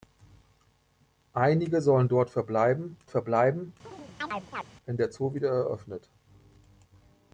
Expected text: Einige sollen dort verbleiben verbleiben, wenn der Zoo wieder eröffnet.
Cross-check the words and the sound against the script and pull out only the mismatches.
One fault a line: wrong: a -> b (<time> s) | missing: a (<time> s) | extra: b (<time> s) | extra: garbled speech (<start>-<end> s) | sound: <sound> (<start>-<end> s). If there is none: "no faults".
sound: chirp (3.9-4.7 s)